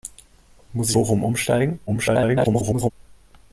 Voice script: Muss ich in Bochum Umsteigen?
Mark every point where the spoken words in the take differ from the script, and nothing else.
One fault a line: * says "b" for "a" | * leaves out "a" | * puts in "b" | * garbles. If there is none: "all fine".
* leaves out "in"
* garbles